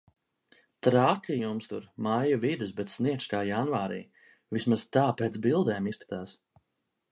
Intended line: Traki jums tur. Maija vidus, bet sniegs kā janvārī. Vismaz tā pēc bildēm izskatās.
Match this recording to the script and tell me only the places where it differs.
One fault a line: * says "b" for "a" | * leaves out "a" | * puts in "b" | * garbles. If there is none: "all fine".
all fine